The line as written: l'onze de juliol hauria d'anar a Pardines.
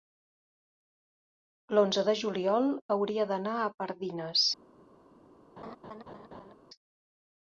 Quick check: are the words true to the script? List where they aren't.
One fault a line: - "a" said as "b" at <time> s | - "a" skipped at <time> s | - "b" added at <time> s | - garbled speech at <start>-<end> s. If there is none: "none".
none